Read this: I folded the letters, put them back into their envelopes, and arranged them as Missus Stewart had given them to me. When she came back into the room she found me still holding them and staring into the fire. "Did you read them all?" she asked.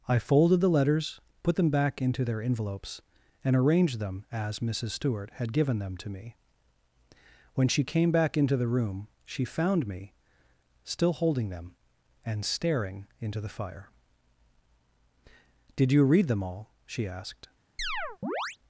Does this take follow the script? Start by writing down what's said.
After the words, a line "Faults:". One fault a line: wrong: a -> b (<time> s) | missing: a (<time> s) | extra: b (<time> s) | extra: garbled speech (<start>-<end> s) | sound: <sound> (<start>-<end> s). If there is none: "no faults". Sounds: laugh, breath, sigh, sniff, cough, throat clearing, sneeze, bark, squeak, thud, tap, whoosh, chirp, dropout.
I folded the letters, put them back into their envelopes, and arranged them as Missus Stewart had given them to me. When she came back into the room she found me still holding them and staring into the fire. "Did you read them all?" she asked.
Faults:
sound: chirp (17.8-18.6 s)